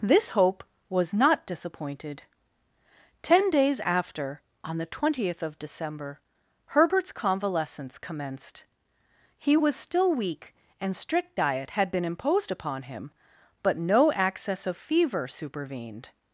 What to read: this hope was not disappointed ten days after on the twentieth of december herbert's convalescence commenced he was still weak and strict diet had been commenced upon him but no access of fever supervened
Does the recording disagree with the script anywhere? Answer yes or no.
yes